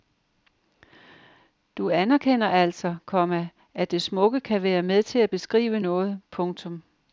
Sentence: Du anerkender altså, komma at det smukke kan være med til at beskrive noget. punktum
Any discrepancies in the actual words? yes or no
no